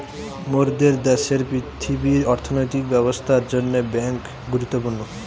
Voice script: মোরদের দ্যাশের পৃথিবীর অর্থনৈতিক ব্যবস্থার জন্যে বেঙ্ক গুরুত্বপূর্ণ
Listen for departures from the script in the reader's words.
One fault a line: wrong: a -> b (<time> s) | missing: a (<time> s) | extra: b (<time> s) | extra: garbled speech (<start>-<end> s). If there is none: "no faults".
no faults